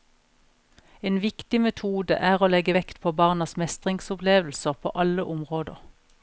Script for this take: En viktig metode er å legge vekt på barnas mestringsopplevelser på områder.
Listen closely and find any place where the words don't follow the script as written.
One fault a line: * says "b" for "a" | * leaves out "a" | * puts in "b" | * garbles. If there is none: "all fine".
* puts in "alle"